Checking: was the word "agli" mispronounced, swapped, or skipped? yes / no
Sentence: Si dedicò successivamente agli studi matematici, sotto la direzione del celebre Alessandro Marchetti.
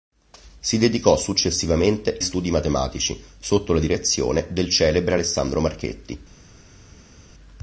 yes